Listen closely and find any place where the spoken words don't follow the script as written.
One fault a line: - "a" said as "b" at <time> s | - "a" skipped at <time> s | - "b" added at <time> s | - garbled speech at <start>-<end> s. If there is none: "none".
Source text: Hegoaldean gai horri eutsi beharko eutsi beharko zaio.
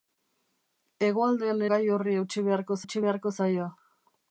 none